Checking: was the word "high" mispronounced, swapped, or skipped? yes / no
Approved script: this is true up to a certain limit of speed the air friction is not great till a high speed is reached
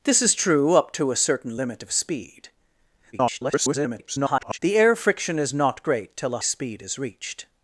yes